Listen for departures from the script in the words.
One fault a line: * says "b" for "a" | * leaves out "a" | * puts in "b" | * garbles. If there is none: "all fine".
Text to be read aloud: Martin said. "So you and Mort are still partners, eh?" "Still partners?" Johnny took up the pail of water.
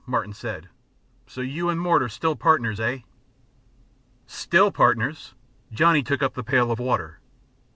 all fine